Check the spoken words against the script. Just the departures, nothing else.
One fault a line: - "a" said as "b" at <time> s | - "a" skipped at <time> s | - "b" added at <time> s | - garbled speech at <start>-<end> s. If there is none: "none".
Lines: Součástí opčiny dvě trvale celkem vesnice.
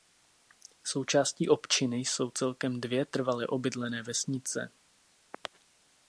- "jsou celkem" added at 2.0 s
- "celkem" said as "obydlené" at 3.5 s